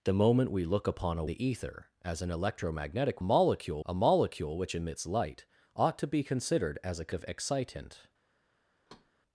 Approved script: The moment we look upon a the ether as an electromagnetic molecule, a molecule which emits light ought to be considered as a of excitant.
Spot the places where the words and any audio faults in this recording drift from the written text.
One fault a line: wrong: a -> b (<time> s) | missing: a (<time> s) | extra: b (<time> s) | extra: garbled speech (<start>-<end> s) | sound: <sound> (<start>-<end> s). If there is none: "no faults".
sound: thud (8.9-9.1 s)